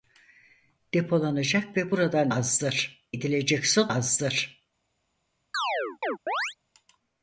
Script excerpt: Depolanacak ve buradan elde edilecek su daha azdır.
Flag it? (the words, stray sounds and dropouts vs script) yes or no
yes